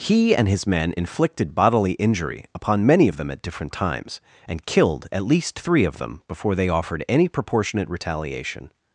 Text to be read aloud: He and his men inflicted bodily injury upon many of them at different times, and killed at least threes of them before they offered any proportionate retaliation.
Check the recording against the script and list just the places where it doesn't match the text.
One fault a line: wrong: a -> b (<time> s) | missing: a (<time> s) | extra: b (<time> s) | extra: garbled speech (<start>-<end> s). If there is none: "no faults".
wrong: threes -> three (5.6 s)